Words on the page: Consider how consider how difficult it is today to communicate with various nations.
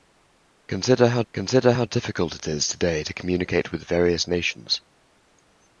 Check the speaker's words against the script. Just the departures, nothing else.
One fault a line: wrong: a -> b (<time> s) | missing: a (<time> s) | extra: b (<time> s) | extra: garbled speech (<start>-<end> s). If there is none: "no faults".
no faults